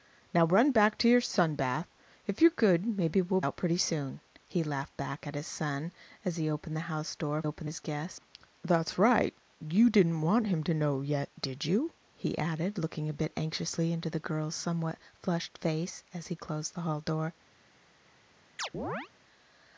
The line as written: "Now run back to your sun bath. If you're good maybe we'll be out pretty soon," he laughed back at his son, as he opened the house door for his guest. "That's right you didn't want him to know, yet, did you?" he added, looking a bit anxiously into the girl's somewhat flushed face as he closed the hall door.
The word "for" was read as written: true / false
false